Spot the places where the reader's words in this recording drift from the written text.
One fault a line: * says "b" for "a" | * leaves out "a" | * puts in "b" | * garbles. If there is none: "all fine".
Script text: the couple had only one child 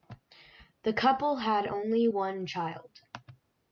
all fine